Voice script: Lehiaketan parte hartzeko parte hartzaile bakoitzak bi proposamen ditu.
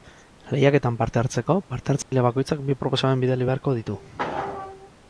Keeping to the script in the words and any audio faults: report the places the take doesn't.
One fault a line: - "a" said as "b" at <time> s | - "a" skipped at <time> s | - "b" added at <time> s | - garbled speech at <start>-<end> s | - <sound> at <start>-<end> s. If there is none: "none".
- dropout at 2.0-2.1 s
- "bidali beharko" added at 3.3 s